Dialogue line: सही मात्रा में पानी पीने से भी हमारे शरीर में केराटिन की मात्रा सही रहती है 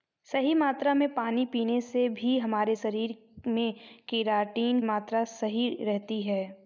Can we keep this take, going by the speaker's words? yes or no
no